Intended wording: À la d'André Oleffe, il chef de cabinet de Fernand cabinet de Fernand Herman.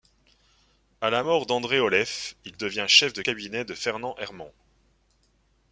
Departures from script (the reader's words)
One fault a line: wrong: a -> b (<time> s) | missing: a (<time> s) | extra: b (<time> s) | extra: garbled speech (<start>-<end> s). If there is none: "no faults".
extra: mort (1.2 s)
extra: devient (2.6 s)
missing: cabinet de Fernand (4.1 s)